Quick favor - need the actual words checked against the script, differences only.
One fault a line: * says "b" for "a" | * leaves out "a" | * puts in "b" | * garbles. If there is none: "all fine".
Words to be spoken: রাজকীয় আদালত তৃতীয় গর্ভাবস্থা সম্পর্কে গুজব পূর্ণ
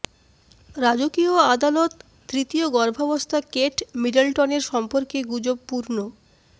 * puts in "কেট মিডলটনের"